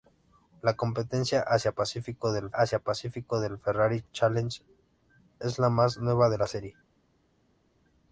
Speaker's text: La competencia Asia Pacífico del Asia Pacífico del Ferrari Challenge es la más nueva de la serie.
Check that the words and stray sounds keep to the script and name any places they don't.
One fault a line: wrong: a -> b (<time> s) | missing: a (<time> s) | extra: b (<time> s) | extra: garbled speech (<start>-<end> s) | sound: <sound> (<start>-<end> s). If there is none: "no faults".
no faults